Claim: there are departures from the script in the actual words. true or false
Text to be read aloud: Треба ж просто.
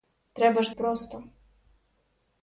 false